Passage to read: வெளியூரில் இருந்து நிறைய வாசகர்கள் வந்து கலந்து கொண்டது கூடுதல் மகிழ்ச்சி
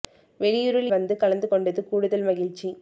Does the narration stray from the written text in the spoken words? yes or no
yes